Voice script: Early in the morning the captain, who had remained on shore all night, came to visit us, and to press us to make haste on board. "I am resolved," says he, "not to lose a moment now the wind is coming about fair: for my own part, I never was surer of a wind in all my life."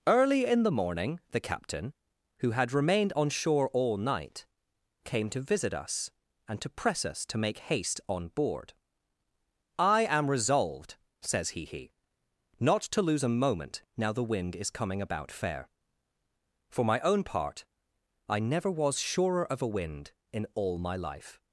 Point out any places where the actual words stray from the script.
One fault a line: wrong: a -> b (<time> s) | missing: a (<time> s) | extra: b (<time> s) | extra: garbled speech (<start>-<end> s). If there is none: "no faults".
extra: he (11.6 s)